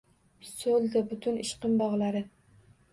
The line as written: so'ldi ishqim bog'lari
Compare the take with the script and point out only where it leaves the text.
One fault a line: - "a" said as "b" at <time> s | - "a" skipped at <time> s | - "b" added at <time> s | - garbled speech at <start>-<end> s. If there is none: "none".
- "butun" added at 1.1 s